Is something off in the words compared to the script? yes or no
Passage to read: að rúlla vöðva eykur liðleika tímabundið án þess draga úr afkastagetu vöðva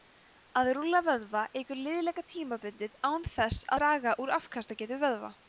no